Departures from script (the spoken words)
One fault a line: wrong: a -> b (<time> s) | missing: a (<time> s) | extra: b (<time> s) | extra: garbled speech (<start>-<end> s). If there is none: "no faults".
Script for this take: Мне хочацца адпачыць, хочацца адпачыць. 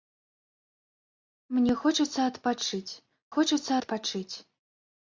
no faults